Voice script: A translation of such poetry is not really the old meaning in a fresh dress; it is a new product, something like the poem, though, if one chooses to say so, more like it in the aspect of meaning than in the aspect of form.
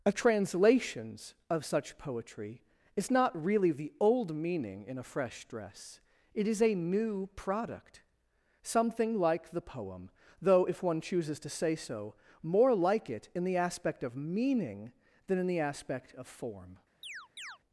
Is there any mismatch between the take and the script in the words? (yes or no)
yes